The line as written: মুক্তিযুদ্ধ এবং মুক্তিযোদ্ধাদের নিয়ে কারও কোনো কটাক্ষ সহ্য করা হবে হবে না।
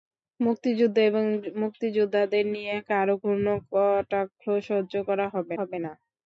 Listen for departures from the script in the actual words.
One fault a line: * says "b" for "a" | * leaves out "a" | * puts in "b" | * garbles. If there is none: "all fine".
all fine